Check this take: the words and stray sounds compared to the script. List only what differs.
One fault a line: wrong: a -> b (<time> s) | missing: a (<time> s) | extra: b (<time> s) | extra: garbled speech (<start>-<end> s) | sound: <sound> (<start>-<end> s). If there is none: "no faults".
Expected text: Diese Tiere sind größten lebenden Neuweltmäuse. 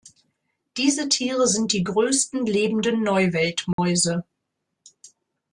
extra: die (1.7 s)
sound: dropout (3.7-3.8 s)